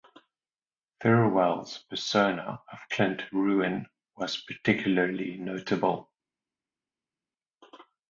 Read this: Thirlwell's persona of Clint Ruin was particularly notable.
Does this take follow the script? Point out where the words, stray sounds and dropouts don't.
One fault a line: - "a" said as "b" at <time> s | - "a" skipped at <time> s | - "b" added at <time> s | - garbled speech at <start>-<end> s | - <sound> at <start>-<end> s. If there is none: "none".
none